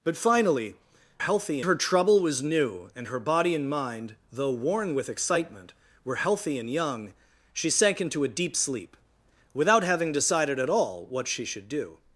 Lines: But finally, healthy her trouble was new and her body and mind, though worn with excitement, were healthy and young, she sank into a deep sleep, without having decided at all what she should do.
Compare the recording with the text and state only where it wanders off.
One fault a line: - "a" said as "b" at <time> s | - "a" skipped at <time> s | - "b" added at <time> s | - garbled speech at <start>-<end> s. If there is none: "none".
none